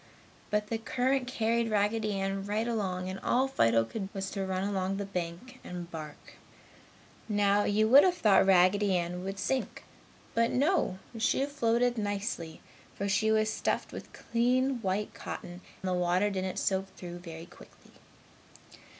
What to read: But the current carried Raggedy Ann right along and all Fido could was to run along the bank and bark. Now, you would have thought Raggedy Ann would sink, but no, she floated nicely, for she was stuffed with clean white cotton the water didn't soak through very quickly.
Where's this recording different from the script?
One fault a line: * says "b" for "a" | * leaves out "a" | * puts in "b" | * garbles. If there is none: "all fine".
all fine